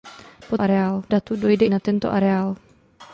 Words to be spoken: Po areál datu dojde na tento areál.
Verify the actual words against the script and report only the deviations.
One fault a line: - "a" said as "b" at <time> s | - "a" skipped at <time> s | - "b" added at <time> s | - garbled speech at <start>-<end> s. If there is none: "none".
none